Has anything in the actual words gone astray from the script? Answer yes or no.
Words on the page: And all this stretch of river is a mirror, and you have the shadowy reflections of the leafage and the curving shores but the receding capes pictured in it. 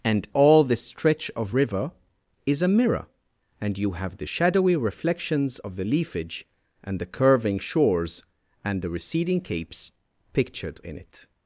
yes